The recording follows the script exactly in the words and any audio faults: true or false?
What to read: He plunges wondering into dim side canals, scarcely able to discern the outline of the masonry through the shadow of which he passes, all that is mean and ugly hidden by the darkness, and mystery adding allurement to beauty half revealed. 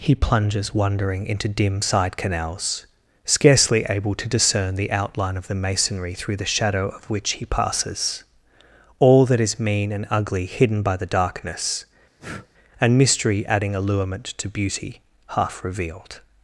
false